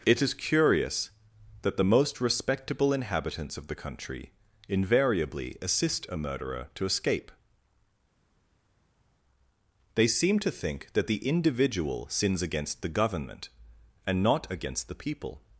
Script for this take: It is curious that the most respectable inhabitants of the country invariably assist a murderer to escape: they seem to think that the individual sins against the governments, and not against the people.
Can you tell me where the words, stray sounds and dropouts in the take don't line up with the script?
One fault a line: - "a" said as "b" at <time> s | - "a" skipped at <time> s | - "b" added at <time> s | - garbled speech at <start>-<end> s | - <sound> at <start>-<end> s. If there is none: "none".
- "governments" said as "government" at 12.9 s